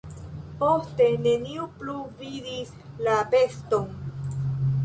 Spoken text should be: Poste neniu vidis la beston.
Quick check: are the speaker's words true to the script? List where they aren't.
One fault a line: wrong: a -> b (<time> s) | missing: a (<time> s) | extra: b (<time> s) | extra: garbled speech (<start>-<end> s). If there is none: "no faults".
extra: plu (1.8 s)